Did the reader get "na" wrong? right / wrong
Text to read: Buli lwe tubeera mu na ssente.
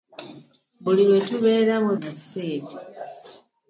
right